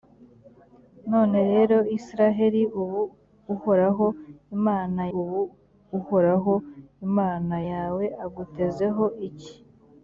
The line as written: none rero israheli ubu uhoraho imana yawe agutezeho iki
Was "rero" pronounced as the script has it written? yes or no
yes